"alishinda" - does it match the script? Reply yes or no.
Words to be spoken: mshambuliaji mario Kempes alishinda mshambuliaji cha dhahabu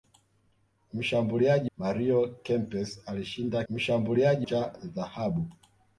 yes